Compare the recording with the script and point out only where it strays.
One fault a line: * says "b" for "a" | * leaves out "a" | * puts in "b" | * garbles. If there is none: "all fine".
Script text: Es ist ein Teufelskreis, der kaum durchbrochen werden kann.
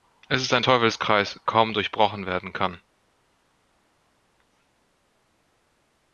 * leaves out "der"